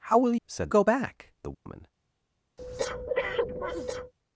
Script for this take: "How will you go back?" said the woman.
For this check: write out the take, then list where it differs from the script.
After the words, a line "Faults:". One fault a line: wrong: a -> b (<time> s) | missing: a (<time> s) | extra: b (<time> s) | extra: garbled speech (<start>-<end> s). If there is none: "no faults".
"How will said go back?" the woman.
Faults:
wrong: you -> said (0.5 s)
missing: said (1.3 s)